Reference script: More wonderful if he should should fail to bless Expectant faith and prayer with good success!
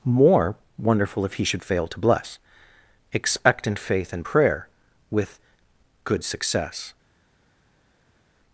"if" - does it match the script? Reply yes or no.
yes